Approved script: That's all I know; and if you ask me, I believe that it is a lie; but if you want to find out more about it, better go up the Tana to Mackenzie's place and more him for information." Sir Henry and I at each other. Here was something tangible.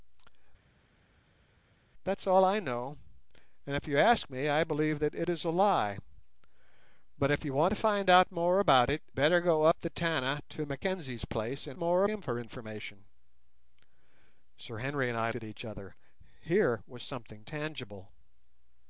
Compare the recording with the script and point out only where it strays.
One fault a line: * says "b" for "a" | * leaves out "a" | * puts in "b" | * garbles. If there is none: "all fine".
all fine